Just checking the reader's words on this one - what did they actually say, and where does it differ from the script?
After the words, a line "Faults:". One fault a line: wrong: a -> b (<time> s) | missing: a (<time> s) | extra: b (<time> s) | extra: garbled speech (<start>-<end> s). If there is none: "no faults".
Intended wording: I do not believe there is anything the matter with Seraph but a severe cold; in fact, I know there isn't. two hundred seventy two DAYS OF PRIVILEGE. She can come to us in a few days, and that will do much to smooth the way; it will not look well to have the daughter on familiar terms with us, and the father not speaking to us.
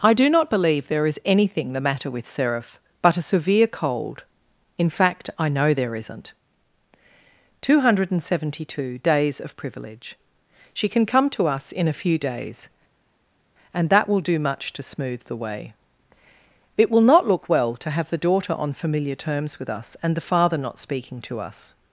I do not believe there is anything the matter with Seraph but a severe cold; in fact, I know there isn't. two hundred seventy two DAYS OF PRIVILEGE. She can come to us in a few days, and that will do much to smooth the way; it will not look well to have the daughter on familiar terms with us, and the father not speaking to us.
Faults:
no faults